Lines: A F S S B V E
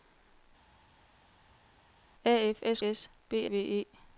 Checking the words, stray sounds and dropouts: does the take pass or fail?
pass